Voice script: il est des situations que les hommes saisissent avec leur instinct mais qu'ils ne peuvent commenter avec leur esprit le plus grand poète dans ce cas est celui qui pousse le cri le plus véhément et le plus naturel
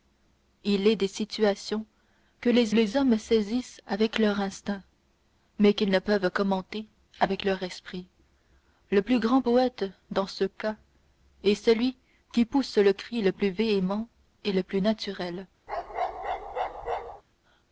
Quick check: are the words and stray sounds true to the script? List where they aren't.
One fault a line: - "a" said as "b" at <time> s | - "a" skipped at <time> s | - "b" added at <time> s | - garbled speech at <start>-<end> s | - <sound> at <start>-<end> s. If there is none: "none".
- "les" added at 2.7 s
- bark at 15.7-17.2 s